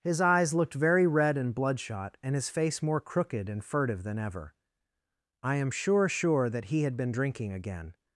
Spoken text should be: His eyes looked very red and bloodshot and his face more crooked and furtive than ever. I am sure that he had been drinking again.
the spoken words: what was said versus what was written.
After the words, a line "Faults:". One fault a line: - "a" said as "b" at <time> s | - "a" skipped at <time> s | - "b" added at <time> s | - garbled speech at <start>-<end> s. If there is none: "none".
His eyes looked very red and bloodshot and his face more crooked and furtive than ever. I am sure sure that he had been drinking again.
Faults:
- "sure" added at 6.1 s